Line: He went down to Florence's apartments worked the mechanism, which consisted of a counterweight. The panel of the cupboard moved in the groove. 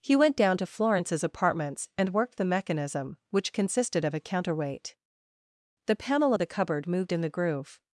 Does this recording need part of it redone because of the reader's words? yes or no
yes